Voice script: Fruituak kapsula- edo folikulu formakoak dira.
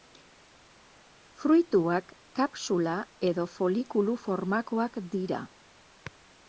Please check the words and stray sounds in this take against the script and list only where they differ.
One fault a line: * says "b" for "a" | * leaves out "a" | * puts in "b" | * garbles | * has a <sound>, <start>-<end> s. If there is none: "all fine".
all fine